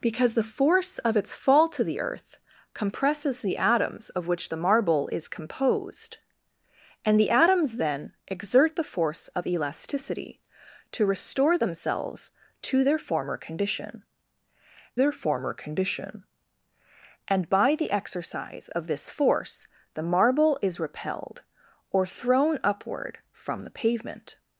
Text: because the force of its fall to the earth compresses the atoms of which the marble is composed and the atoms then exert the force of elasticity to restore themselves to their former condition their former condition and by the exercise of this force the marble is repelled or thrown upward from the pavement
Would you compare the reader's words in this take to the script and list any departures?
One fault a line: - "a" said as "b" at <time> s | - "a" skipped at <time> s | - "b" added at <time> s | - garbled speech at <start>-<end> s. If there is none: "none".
none